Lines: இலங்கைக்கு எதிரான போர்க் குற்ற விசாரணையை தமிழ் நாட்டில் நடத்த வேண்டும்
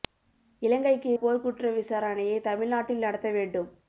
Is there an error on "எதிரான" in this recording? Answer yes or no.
yes